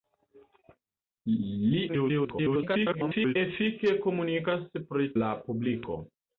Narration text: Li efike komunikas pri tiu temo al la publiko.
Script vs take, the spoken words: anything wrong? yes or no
yes